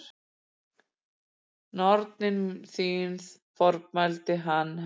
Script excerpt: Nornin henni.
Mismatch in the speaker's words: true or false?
true